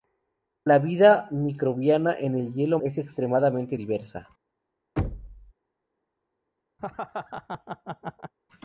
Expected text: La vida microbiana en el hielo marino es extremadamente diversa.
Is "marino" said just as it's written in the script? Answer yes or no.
no